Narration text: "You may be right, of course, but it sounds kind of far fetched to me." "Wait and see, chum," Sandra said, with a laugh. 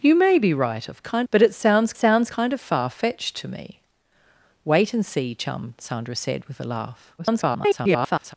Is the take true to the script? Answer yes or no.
no